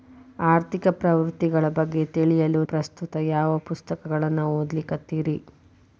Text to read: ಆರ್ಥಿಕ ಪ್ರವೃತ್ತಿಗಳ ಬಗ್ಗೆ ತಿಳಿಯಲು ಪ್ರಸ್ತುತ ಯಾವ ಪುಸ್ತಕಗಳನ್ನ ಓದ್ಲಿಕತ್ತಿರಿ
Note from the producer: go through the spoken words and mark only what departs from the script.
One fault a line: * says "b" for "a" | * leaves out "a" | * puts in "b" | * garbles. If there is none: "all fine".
all fine